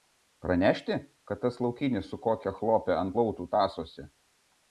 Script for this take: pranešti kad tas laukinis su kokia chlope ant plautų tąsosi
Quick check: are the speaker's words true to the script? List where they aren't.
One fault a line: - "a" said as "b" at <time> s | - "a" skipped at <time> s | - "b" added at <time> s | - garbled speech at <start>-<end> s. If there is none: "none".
none